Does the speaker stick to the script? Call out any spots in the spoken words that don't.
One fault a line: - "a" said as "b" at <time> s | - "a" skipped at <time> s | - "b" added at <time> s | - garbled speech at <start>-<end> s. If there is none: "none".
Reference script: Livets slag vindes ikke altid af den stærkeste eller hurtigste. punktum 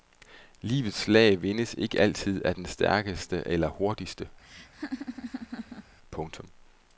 none